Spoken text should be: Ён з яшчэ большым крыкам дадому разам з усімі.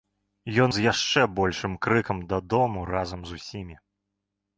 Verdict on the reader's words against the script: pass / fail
pass